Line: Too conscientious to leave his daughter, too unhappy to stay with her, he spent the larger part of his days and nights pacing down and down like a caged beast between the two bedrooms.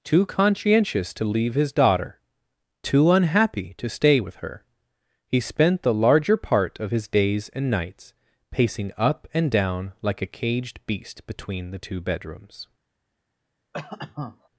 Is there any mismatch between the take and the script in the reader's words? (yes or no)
yes